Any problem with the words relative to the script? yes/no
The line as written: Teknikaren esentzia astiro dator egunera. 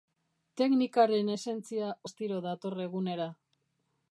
no